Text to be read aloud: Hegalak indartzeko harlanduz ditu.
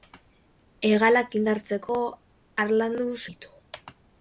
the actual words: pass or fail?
pass